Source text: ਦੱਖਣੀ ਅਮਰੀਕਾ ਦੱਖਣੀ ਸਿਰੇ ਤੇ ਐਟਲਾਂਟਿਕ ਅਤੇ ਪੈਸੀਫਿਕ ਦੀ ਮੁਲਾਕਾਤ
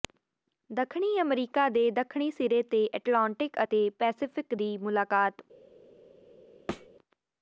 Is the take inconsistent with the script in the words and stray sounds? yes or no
yes